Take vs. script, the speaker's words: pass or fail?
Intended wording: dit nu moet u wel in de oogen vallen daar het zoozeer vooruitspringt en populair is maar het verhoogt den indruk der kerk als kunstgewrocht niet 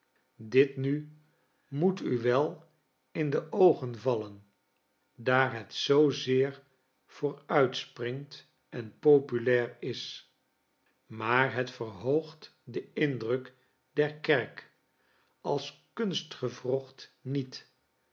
pass